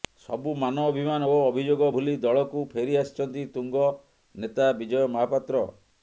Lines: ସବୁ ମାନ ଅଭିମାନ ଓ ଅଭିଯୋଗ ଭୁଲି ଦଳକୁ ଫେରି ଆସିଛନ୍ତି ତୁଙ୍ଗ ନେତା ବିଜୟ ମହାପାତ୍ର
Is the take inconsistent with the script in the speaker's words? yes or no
no